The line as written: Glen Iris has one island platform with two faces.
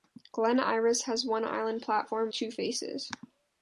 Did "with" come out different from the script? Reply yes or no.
yes